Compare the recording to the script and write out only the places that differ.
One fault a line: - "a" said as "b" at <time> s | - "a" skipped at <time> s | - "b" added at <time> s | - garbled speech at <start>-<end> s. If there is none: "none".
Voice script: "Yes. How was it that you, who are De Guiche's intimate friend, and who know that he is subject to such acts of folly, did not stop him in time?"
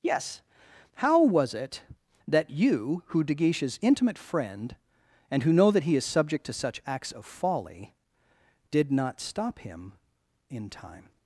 - "are" skipped at 3.2 s